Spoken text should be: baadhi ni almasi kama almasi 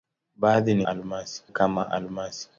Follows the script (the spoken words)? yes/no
yes